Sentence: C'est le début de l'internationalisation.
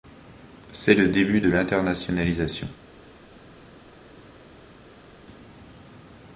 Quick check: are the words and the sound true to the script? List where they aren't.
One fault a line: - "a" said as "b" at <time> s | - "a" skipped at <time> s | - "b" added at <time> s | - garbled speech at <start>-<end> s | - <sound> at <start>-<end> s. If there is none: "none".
none